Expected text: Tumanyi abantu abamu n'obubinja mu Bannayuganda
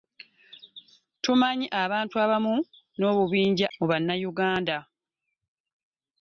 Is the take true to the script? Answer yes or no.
yes